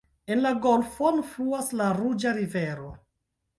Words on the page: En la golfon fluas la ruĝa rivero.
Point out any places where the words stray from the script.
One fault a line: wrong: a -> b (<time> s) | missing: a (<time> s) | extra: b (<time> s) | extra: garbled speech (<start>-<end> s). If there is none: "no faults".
no faults